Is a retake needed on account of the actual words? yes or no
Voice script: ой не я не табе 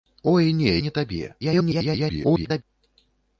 yes